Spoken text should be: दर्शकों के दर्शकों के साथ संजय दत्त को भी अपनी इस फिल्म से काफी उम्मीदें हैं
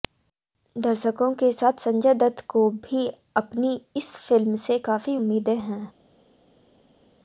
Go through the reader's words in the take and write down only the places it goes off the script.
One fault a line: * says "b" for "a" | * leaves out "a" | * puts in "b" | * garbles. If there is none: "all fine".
* leaves out "दर्शकों के"